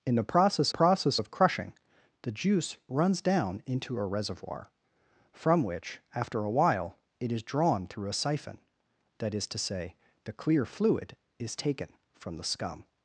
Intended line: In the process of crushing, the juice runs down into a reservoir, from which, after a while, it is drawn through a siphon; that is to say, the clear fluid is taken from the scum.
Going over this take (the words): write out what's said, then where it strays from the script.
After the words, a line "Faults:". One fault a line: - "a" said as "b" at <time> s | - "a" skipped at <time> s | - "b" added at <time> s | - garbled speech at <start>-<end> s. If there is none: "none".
In the process process of crushing, the juice runs down into a reservoir, from which, after a while, it is drawn through a siphon; that is to say, the clear fluid is taken from the scum.
Faults:
- "process" added at 0.7 s